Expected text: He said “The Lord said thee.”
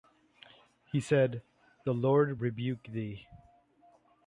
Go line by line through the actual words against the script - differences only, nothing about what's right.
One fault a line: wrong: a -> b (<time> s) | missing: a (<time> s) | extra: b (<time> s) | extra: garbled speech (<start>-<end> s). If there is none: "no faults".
wrong: said -> rebuke (2.4 s)